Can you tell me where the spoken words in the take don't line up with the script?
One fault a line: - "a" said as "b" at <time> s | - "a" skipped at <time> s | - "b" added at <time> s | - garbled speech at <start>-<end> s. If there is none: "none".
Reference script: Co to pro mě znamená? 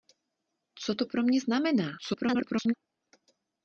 - garbled speech at 2.0-2.7 s